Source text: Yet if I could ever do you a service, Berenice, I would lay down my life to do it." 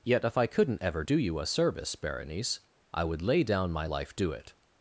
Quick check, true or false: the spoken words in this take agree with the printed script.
false